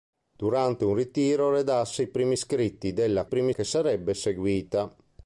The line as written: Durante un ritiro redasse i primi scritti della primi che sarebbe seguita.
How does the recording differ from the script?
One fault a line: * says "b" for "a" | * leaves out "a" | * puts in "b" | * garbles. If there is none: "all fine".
all fine